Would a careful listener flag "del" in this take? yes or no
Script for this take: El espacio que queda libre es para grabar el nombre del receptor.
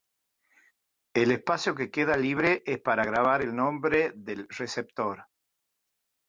no